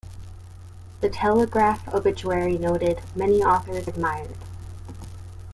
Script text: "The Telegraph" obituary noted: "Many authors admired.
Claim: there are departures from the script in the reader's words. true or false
false